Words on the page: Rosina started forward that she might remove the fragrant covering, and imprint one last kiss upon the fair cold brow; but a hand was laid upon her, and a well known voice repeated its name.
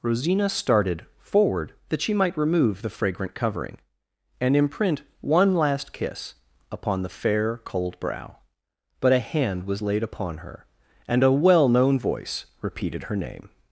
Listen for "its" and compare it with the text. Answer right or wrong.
wrong